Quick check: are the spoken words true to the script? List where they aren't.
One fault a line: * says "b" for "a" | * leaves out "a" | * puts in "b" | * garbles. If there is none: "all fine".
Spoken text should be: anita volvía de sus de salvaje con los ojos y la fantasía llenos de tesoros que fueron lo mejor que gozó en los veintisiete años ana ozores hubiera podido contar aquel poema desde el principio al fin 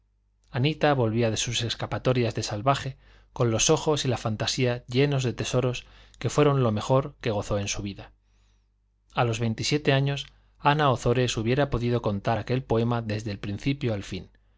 * puts in "escapatorias"
* puts in "su vida a"